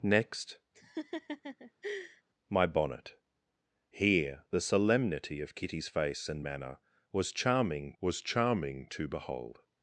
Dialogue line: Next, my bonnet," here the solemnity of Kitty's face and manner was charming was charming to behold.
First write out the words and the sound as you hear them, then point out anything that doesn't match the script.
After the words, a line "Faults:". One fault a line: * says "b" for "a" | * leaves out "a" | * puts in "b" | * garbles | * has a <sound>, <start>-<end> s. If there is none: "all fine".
Next, my bonnet," here the solemnity of Kitty's face and manner was charming was charming to behold.
Faults:
* has a laugh, 0.7-2.2 s